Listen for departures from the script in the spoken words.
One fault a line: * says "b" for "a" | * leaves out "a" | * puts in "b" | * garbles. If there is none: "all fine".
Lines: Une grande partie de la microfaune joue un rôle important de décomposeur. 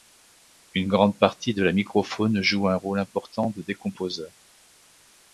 all fine